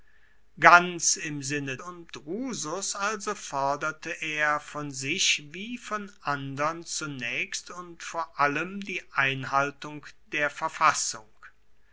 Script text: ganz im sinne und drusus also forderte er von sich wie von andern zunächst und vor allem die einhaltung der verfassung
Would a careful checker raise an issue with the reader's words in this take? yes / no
no